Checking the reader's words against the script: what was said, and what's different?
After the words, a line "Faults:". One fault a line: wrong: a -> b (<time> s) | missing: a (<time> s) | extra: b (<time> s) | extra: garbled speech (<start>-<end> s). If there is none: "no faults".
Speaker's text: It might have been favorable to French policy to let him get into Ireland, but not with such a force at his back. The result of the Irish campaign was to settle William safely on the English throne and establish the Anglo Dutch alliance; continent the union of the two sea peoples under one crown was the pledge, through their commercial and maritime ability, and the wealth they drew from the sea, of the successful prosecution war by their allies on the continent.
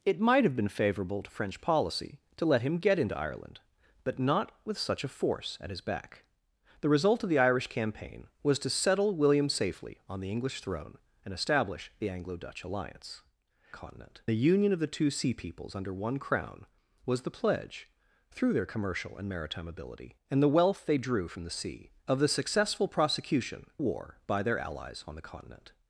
It might have been favorable to French policy to let him get into Ireland, but not with such a force at his back. The result of the Irish campaign was to settle William safely on the English throne and establish the Anglo Dutch alliance; continent the union of the two sea peoples under one crown was the pledge, through their commercial and maritime ability, and the wealth they drew from the sea, of the successful prosecution war by their allies on the continent.
Faults:
no faults